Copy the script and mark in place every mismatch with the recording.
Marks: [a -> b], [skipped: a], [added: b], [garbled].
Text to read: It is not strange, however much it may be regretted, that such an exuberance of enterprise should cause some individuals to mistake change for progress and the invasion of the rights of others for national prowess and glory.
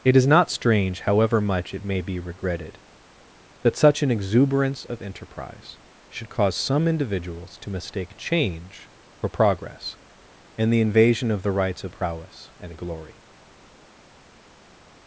It is not strange, however much it may be regretted, that such an exuberance of enterprise should cause some individuals to mistake change for progress and the invasion of the rights of [skipped: others for national] prowess and glory.